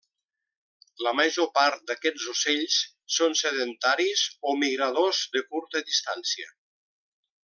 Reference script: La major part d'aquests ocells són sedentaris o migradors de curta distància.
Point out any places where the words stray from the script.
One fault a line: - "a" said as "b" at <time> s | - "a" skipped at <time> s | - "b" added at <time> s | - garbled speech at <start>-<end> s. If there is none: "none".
none